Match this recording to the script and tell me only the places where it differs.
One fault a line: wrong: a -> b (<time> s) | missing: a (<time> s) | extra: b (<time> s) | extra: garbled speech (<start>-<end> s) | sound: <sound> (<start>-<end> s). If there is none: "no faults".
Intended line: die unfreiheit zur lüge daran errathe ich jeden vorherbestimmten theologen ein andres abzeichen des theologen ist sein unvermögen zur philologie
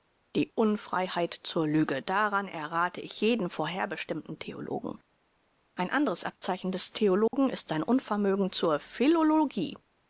sound: dropout (7.3-7.3 s)